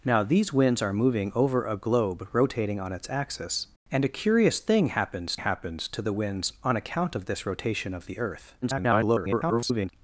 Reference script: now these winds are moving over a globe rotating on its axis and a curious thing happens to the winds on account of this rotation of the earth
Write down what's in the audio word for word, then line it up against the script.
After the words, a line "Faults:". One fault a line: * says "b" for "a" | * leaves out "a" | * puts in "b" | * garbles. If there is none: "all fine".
now these winds are moving over a globe rotating on its axis and a curious thing happens happens to the winds on account of this rotation of the earth [garbled]
Faults:
* puts in "happens"
* garbles